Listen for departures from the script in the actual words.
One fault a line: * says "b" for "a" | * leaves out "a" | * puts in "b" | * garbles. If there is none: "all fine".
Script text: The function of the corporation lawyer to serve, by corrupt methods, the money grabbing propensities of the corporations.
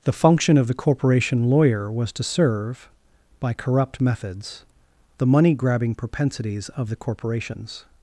* puts in "was"